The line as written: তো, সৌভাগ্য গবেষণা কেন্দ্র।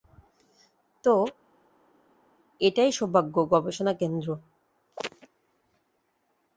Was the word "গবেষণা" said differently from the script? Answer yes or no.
no